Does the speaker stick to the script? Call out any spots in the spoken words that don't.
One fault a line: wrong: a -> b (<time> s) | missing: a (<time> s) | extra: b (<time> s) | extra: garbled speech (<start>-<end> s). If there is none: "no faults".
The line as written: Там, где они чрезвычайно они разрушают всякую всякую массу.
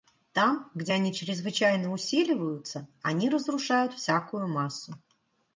extra: усиливаются (1.9 s)
missing: всякую (4.5 s)